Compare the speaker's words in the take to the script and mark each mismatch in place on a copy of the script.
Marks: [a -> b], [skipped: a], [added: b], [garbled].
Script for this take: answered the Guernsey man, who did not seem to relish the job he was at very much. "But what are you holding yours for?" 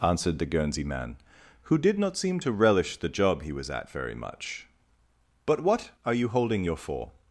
answered the Guernsey man, who did not seem to relish the job he was at very much. "But what are you holding [yours -> your] for?"